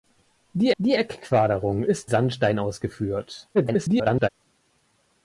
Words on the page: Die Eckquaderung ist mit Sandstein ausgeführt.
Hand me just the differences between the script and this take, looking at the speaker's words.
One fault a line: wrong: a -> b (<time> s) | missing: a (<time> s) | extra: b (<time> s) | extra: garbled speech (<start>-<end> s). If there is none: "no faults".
extra: die (0.8 s)
missing: mit (2.1 s)
extra: garbled speech (3.5-4.3 s)